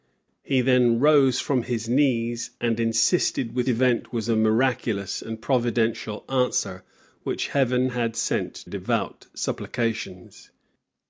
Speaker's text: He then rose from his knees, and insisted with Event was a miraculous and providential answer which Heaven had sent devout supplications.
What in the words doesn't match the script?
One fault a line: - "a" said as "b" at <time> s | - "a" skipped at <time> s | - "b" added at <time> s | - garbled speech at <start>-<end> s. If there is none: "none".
none